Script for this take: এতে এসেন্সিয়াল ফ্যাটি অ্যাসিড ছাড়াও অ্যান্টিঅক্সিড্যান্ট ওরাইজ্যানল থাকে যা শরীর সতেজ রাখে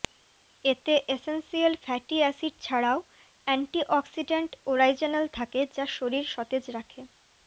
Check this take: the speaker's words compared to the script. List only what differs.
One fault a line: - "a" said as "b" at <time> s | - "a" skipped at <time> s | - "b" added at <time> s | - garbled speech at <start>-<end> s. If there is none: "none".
none